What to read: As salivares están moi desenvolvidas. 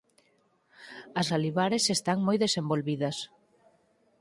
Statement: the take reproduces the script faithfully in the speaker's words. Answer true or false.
true